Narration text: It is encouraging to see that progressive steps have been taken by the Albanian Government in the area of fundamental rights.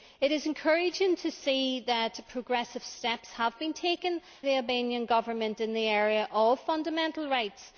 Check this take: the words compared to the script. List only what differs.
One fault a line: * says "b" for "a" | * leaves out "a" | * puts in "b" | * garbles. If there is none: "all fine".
* leaves out "by"